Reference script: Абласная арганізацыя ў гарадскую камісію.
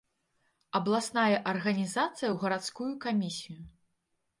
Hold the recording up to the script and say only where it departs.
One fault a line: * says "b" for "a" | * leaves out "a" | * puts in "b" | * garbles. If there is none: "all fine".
all fine